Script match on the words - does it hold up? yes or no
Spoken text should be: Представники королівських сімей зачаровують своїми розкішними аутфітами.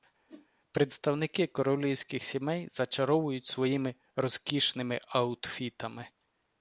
yes